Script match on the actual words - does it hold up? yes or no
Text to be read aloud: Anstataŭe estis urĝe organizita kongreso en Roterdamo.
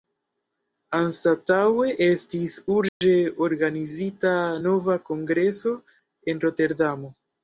no